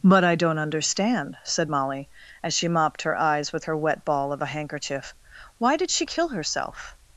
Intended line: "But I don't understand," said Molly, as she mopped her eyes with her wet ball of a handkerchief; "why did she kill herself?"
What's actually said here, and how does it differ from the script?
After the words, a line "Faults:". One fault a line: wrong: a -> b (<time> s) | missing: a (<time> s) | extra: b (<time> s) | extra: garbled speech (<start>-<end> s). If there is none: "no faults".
"But I don't understand," said Molly, as she mopped her eyes with her wet ball of a handkerchief; "why did she kill herself?"
Faults:
no faults